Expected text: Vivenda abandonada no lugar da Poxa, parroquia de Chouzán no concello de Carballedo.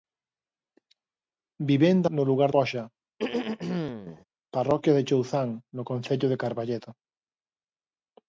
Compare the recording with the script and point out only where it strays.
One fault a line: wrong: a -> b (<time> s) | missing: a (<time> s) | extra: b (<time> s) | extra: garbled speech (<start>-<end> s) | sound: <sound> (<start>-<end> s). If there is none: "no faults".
missing: abandonada (2.1 s)
missing: da (2.5 s)
sound: throat clearing (3.2-4.2 s)